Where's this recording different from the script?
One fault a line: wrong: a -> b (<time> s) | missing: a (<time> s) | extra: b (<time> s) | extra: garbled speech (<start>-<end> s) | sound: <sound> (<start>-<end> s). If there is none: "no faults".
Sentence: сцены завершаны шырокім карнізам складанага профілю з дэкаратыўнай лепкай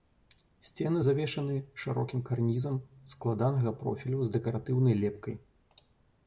no faults